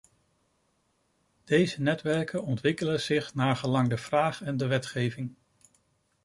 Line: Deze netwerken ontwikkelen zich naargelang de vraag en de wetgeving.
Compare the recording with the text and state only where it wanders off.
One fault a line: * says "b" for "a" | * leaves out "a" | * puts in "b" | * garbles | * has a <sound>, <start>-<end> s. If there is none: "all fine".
all fine